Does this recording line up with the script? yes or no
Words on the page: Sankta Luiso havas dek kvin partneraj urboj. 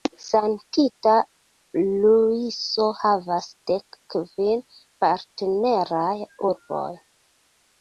yes